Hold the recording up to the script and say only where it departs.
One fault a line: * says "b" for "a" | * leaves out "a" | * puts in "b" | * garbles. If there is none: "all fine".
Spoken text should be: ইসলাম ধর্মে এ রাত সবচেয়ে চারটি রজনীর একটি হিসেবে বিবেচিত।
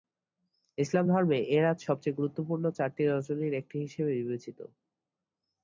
* puts in "গুরুত্বপূর্ণ"